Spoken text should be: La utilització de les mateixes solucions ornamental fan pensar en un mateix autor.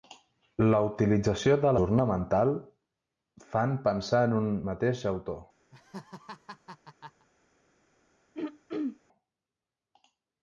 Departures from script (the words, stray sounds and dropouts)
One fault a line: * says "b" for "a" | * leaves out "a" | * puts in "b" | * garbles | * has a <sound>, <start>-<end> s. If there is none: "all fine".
* leaves out "les mateixes solucions"
* has a laugh, 5.7-7.3 s
* has a throat clearing, 8.3-9.0 s